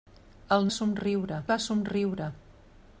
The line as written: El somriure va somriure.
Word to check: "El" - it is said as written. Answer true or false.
true